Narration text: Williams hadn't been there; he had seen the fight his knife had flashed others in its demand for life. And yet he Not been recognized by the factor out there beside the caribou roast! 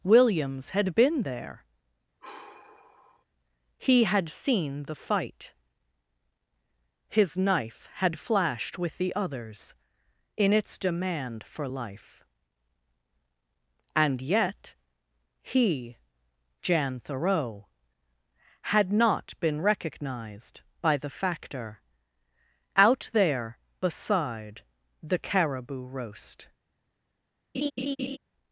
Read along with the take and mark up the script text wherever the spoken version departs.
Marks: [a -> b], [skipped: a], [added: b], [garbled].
Williams [hadn't -> had] been there; he had seen the fight his knife had flashed [added: with the] others in its demand for life. And yet he [added: Jan Thoreau had] Not been recognized by the factor out there beside the caribou roast!